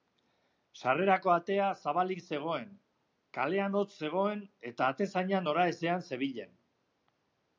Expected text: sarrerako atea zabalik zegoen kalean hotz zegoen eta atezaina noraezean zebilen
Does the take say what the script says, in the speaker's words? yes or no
yes